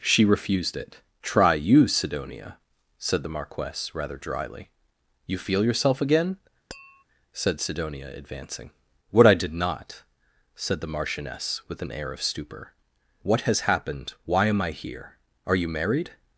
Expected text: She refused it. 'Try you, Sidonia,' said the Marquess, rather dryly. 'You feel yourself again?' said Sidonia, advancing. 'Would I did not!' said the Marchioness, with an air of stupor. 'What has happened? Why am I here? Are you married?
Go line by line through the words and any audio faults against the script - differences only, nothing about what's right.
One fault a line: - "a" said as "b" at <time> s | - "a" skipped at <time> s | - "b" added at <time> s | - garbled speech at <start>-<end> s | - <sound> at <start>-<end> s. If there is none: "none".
- tap at 6.7-7.0 s
- "Would" said as "What" at 9.1 s